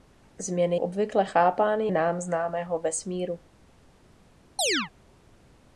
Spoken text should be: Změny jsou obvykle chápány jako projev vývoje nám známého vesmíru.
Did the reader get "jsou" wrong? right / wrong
wrong